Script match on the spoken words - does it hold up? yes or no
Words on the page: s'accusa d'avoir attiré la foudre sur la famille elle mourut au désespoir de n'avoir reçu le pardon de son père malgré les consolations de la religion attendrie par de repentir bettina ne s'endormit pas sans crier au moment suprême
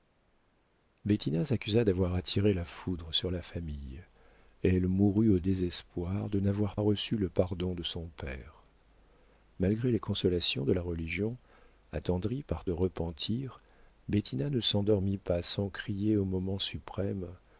yes